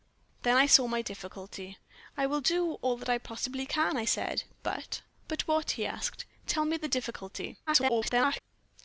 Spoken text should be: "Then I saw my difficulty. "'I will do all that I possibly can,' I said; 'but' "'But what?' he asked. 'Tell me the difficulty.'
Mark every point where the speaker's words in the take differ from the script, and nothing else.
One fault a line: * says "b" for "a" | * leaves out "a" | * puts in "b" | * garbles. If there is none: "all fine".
* garbles